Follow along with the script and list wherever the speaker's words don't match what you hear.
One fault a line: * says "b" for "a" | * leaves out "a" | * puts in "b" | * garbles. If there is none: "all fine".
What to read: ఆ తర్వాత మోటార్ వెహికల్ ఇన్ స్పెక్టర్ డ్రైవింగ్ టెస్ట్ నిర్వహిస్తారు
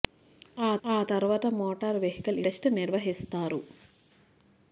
* puts in "ఆ"
* leaves out "ఇన్ స్పెక్టర్ డ్రైవింగ్"